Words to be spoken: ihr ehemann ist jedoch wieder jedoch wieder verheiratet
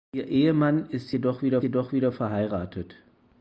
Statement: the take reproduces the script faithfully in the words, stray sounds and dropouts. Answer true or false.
true